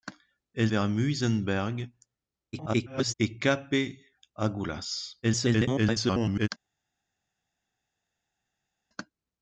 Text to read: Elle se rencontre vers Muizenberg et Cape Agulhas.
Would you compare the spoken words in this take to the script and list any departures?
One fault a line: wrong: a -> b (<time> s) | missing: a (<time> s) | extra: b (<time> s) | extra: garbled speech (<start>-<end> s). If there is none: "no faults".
missing: se rencontre (0.7 s)
extra: garbled speech (2.5-3.1 s)
extra: garbled speech (5.2-6.5 s)